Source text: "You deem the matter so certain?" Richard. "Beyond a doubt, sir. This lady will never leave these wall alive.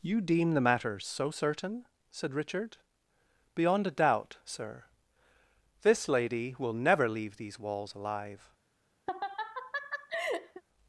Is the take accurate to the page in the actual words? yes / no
no